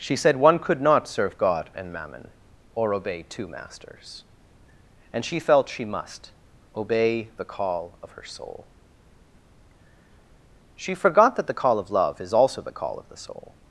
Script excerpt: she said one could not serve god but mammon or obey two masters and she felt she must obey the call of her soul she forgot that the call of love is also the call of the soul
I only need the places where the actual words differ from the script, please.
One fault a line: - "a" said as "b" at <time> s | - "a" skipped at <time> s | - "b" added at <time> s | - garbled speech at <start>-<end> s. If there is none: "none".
- "but" said as "and" at 1.8 s